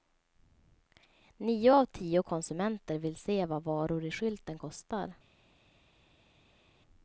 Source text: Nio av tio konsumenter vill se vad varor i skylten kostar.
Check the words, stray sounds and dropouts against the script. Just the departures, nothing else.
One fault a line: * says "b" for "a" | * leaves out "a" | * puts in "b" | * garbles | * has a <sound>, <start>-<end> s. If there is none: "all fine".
all fine